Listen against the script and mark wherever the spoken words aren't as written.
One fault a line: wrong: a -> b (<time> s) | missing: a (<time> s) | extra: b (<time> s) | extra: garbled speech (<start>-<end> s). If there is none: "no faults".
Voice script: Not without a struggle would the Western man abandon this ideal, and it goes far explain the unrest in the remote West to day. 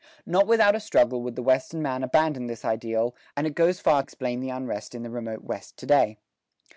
no faults